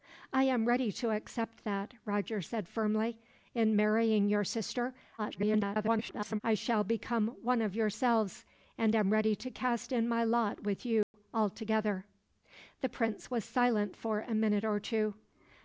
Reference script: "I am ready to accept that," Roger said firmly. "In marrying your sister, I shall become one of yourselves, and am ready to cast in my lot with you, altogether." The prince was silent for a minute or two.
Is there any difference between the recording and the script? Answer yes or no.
yes